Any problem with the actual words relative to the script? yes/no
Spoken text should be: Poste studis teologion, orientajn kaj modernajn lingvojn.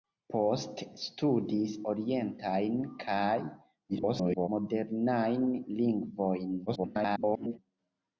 yes